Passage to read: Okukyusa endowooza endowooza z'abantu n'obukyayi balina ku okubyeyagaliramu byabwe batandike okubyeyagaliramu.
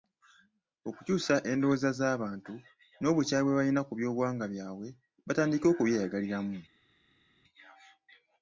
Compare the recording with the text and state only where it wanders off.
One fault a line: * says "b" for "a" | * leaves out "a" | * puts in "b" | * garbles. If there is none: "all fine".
* leaves out "endowooza"
* puts in "bwe"
* says "byobuwangwa" for "okubyeyagaliramu"